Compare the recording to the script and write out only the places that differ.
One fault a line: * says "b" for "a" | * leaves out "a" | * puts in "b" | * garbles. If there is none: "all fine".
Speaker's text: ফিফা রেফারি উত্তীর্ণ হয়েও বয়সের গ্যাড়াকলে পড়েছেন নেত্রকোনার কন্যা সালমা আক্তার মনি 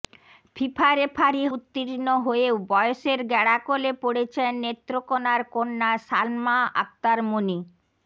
all fine